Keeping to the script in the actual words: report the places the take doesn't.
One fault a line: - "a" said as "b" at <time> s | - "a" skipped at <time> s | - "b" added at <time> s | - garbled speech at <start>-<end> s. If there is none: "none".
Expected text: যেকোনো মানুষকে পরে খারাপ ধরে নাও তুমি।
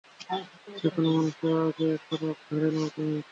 - "পরে" said as "আগে" at 1.6 s